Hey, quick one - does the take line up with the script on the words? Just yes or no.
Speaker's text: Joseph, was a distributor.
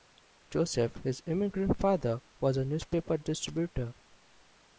no